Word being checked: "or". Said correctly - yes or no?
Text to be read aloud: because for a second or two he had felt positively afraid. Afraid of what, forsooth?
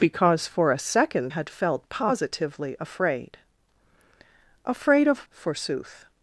no